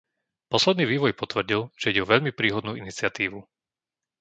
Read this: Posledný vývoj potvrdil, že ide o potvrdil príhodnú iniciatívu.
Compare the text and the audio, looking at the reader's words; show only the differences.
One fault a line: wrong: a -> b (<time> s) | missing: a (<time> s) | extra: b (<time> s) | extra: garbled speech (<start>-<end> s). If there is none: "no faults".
wrong: potvrdil -> veľmi (2.1 s)